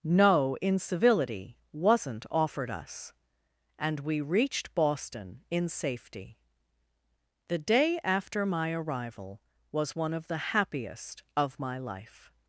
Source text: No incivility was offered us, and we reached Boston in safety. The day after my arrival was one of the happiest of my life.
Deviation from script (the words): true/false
true